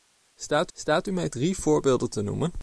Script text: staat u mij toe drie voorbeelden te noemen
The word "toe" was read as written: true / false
false